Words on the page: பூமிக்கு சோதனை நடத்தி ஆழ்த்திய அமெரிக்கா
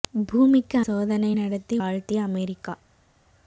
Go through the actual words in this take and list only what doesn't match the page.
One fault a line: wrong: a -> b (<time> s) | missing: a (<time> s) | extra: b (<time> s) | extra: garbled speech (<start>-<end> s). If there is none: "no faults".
no faults